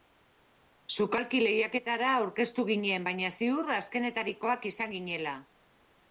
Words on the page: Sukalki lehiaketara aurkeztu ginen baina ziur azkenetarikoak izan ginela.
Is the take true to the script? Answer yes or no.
yes